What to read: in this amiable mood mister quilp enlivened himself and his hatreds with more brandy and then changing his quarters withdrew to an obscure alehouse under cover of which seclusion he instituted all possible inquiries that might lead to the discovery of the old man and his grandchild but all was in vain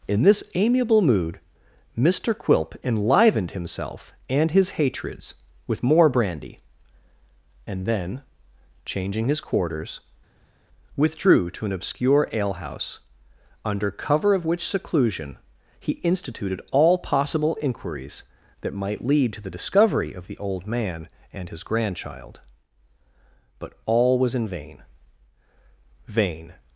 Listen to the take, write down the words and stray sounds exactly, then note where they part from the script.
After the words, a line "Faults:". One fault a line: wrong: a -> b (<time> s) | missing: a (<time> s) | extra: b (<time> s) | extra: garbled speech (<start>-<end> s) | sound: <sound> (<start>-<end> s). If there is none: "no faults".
in this amiable mood mister quilp enlivened himself and his hatreds with more brandy and then changing his quarters withdrew to an obscure alehouse under cover of which seclusion he instituted all possible inquiries that might lead to the discovery of the old man and his grandchild but all was in vain vain
Faults:
extra: vain (26.1 s)